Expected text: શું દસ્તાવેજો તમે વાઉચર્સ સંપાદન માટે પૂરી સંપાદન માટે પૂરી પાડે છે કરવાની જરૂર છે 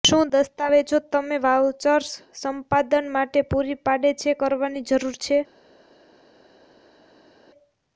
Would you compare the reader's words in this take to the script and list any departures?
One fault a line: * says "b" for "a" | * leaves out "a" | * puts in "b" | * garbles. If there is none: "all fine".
* leaves out "સંપાદન માટે પૂરી"